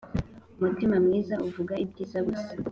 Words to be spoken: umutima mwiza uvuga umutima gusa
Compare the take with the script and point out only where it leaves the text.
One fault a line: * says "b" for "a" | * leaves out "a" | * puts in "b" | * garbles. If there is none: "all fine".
* says "ibyiza" for "umutima"